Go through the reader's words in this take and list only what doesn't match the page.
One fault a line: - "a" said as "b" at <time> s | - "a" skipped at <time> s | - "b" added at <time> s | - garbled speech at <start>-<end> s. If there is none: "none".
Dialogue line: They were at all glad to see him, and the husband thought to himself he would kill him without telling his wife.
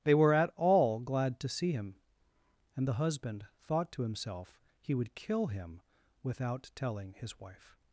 none